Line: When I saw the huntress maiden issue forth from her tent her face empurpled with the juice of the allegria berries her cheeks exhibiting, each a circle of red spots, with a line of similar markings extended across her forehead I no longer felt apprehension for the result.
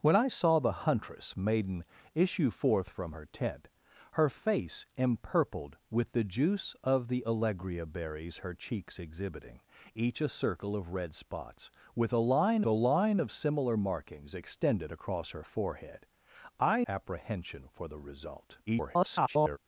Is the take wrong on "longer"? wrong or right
wrong